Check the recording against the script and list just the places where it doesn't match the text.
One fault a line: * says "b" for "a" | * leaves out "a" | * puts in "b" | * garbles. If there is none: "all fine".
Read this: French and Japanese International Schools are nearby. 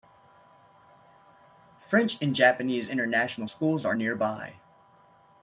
all fine